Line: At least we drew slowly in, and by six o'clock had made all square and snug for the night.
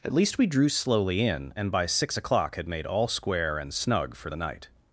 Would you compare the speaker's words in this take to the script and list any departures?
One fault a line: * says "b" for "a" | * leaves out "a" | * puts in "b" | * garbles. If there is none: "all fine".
all fine